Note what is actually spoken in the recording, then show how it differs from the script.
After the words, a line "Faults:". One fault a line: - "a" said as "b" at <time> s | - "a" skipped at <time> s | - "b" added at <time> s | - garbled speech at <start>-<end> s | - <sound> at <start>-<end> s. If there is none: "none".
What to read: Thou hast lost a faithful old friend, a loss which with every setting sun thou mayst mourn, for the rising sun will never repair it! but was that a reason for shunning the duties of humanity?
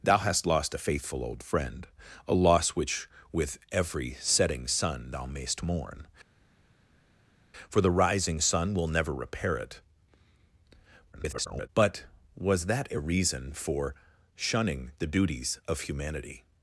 Thou hast lost a faithful old friend, a loss which with every setting sun thou mayst mourn, for the rising sun will never repair it! [garbled] but was that a reason for shunning the duties of humanity?
Faults:
- garbled speech at 11.1-11.7 s